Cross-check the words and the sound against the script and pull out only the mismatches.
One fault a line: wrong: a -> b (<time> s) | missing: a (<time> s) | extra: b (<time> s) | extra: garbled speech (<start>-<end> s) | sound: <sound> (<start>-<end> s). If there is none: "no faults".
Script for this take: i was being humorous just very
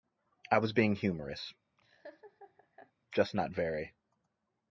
sound: laugh (1.8-2.9 s)
extra: not (3.3 s)